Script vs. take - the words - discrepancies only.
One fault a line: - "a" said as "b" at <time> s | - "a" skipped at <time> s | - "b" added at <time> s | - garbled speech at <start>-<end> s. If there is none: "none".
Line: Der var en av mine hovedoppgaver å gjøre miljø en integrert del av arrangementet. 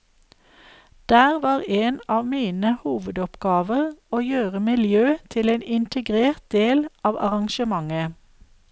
- "til" added at 5.3 s